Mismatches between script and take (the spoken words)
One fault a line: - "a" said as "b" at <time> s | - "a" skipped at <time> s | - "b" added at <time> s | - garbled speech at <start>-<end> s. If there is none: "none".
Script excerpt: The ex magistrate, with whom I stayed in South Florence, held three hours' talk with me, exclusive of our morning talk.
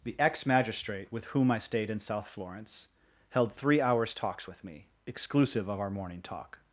- "talk" said as "talks" at 4.1 s